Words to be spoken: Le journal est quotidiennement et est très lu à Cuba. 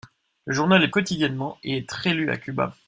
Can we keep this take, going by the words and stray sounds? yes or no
yes